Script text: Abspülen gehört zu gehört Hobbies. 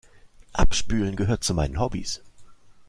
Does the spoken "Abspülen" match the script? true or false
true